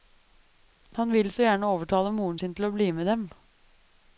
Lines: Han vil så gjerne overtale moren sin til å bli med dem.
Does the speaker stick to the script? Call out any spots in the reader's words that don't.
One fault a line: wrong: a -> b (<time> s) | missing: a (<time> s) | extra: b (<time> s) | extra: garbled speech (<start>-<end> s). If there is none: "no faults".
no faults